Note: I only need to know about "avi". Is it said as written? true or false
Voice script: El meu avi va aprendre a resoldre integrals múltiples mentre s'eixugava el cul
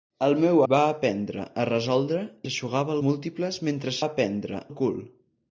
false